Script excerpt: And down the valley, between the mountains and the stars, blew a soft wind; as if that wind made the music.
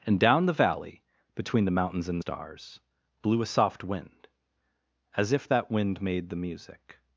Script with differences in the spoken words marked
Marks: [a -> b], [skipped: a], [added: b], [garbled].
And down the valley, between the mountains and [skipped: the] stars, blew a soft wind; as if that wind made the music.